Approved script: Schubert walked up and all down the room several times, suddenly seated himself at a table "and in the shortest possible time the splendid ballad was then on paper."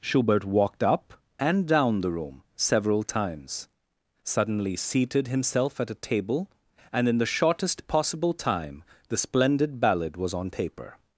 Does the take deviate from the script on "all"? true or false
true